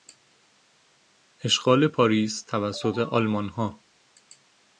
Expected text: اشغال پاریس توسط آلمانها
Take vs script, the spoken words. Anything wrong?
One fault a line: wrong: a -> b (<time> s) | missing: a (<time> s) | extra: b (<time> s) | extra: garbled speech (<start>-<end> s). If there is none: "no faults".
no faults